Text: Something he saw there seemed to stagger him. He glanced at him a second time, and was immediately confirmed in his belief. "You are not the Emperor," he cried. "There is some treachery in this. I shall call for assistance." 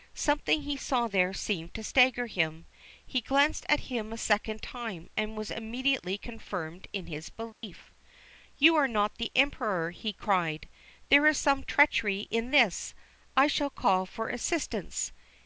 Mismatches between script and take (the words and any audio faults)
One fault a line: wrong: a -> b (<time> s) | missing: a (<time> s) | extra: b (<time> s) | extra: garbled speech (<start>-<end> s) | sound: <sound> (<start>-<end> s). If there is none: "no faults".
sound: dropout (7.5-7.6 s)